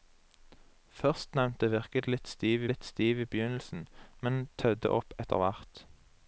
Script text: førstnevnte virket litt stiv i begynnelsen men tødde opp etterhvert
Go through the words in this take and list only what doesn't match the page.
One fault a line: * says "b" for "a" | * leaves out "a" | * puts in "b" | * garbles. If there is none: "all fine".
* puts in "litt stiv"